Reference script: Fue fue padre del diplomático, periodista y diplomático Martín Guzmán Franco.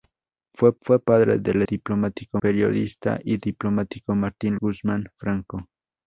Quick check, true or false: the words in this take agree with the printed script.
true